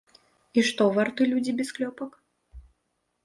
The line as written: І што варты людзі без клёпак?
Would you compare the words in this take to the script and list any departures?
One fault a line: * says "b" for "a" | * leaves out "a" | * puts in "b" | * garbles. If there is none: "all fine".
all fine